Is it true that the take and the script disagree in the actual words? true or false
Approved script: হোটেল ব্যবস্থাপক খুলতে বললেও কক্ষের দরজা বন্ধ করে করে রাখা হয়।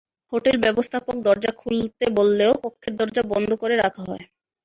true